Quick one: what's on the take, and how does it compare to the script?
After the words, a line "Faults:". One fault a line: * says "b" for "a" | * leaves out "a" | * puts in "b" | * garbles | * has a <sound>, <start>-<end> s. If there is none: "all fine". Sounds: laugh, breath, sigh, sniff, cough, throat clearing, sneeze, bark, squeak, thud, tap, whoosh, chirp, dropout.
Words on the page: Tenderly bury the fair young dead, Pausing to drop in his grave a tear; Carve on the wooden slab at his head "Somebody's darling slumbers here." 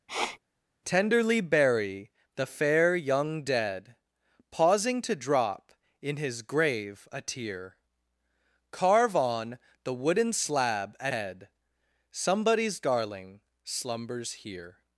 Tenderly bury the fair young dead, Pausing to drop in his grave a tear; Carve on the wooden slab at head "Somebody's darling slumbers here."
Faults:
* has a sniff, 0.1-0.4 s
* leaves out "his"